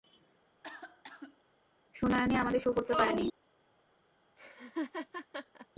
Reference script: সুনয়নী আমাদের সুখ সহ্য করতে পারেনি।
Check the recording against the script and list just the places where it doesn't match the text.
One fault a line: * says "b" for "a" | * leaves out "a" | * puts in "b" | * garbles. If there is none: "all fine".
* leaves out "সহ্য"